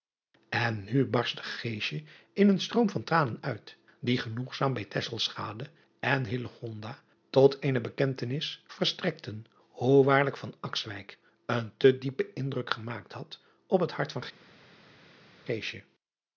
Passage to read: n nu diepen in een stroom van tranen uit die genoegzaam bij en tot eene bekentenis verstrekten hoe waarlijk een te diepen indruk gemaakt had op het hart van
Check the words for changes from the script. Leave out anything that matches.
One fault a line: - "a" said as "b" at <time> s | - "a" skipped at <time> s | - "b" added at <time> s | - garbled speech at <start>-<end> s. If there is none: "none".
- "diepen" said as "barstte" at 1.1 s